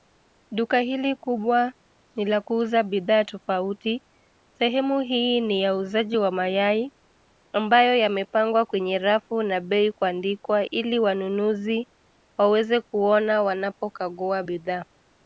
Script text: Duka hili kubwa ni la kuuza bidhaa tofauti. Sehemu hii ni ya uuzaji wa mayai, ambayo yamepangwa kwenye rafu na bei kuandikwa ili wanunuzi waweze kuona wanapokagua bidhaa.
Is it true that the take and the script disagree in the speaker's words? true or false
false